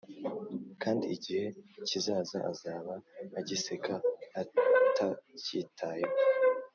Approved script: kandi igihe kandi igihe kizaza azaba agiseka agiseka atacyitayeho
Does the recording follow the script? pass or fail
fail